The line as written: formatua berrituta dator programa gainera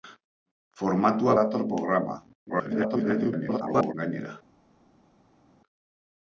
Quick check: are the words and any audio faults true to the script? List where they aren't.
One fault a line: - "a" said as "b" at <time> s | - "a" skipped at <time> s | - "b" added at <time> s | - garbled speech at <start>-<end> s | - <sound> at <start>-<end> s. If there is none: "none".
- "berrituta" skipped at 1.4 s
- garbled speech at 2.5-3.9 s